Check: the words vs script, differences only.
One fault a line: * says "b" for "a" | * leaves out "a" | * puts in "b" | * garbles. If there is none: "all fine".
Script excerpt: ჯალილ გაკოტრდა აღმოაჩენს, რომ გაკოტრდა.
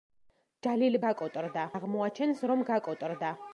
all fine